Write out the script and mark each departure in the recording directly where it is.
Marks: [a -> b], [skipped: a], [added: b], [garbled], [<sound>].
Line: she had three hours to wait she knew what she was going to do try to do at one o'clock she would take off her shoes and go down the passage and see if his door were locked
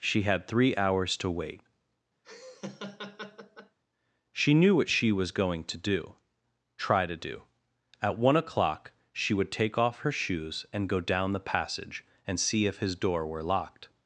she had three hours to wait [laugh] she knew what she was going to do try to do at one o'clock she would take off her shoes and go down the passage and see if his door were locked